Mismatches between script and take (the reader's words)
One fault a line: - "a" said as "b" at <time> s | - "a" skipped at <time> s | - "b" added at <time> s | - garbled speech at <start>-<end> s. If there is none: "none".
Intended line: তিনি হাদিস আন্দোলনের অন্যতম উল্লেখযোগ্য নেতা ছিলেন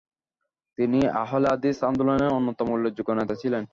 - "আহলে" added at 1.2 s